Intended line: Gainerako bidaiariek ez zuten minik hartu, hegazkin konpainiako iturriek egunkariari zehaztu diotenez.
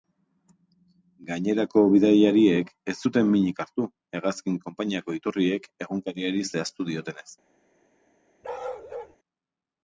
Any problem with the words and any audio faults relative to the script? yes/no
yes